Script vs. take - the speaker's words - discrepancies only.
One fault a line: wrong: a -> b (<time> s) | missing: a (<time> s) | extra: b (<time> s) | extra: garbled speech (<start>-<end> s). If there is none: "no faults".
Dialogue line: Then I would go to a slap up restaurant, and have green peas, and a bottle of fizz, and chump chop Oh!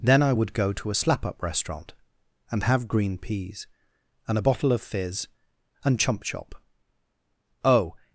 no faults